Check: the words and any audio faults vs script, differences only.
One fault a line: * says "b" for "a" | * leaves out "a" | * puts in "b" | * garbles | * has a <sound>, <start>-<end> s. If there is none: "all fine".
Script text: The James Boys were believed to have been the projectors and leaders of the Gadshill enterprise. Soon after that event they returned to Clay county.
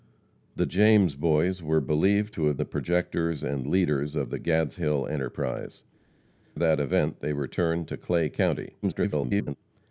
* leaves out "been"
* leaves out "Soon after"
* garbles